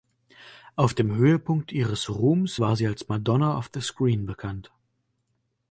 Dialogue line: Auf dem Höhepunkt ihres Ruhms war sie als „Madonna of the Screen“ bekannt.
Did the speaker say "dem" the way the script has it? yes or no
yes